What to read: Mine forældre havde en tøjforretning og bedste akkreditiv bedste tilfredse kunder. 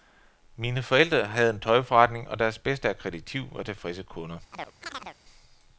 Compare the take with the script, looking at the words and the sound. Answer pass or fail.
fail